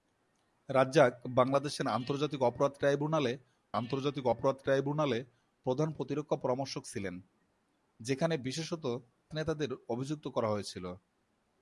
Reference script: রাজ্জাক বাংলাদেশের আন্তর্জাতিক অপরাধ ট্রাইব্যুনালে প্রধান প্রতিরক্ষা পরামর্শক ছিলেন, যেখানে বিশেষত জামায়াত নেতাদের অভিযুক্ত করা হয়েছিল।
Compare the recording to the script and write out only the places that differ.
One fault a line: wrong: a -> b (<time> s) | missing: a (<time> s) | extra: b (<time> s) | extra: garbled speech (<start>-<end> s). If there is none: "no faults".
extra: আন্তর্জাতিক অপরাধ ট্রাইব্যুনালে (3.8 s)
missing: জামায়াত (8.8 s)